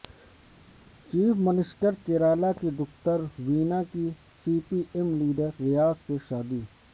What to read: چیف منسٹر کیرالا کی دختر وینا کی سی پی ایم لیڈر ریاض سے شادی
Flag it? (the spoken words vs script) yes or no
no